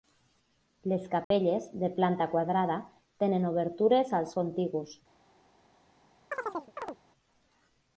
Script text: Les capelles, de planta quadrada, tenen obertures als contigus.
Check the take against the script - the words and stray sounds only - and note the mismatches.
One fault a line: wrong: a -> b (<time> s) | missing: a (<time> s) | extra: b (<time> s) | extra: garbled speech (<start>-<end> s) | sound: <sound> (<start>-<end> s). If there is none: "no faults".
sound: dropout (1.2-1.3 s)
sound: chirp (6.3-7.0 s)